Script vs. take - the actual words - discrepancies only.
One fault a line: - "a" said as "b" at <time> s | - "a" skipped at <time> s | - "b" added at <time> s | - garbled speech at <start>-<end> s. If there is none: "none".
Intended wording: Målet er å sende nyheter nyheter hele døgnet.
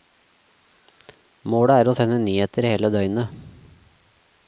- "nyheter" skipped at 2.7 s